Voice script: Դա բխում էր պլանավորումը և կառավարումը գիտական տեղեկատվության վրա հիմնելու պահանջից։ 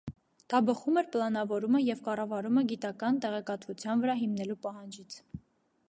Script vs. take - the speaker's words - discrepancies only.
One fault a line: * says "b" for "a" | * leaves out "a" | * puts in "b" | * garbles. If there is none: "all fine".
all fine